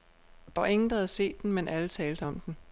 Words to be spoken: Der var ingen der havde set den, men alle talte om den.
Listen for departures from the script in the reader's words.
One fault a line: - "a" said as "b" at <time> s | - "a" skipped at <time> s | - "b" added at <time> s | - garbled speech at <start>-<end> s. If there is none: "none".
none